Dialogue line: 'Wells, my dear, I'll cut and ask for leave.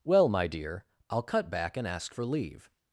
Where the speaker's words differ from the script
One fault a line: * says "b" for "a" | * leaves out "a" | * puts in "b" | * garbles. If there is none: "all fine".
* says "Well" for "Wells"
* puts in "back"